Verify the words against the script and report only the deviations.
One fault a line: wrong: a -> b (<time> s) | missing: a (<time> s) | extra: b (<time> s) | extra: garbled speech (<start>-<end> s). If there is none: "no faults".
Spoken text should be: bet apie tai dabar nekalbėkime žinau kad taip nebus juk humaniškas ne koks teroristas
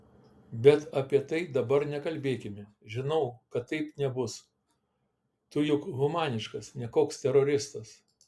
extra: tu (5.5 s)